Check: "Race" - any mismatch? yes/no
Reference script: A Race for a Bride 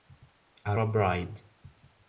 yes